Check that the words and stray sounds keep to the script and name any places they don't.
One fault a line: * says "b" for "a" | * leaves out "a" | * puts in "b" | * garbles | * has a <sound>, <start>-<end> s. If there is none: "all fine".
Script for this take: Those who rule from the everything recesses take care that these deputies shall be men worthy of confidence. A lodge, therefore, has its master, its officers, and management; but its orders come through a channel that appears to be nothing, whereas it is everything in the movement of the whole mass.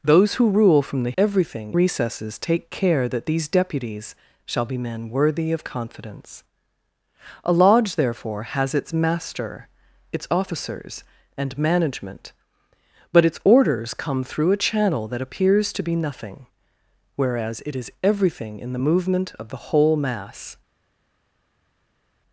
all fine